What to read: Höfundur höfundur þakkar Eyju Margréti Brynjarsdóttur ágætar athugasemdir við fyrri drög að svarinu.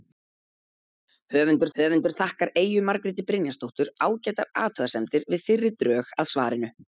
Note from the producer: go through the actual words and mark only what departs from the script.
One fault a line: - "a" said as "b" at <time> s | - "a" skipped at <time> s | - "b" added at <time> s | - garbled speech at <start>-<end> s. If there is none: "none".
none